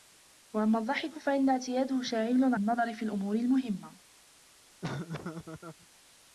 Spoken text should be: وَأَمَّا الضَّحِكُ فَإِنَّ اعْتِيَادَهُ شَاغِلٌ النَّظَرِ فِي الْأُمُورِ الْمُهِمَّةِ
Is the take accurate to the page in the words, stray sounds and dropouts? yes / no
no